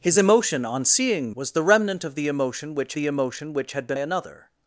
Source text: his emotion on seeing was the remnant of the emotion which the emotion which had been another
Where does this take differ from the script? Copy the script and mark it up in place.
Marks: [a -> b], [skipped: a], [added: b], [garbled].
his emotion on seeing was the remnant of the emotion which the emotion which had been another